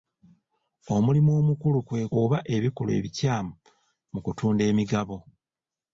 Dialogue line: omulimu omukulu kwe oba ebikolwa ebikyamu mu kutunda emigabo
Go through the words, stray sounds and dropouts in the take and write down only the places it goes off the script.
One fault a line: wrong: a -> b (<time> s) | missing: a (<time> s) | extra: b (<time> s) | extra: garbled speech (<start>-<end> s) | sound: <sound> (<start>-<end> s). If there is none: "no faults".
no faults